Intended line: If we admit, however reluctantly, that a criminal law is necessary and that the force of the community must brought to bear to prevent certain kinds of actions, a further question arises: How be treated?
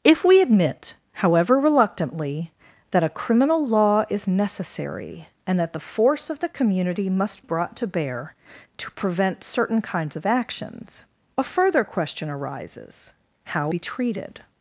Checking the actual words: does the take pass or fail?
pass